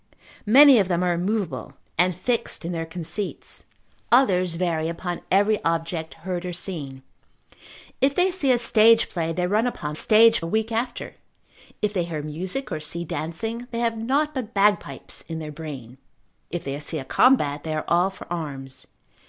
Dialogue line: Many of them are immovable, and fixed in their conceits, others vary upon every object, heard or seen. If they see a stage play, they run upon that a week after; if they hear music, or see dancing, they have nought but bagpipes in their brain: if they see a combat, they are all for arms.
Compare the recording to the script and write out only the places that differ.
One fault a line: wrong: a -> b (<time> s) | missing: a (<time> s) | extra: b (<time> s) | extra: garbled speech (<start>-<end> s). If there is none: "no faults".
wrong: that -> stage (9.9 s)